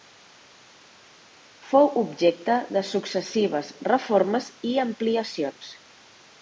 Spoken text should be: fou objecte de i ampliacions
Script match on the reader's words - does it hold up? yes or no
no